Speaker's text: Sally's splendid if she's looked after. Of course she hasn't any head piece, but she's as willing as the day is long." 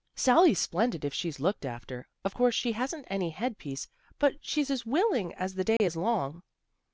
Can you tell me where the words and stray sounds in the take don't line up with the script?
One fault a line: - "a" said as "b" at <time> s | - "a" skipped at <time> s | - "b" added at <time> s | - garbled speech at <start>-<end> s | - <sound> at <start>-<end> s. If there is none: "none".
- dropout at 5.8-5.8 s